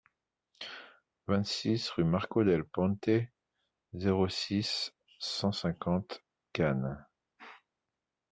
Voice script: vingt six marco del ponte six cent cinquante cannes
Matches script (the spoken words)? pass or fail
fail